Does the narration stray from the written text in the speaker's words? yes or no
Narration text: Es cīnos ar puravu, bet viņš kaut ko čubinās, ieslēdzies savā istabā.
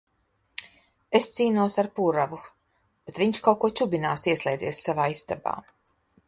no